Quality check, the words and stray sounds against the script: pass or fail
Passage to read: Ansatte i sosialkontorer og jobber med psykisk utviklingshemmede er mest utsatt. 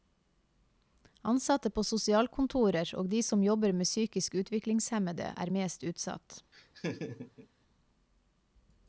fail